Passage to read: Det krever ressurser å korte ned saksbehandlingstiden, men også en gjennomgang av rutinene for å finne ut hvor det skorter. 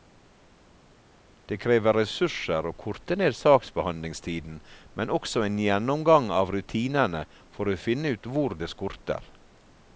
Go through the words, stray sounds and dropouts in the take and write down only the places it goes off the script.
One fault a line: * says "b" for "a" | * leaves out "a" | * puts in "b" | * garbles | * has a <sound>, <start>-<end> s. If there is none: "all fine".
all fine